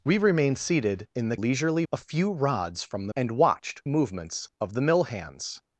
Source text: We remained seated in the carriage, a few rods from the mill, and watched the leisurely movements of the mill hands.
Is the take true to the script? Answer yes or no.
no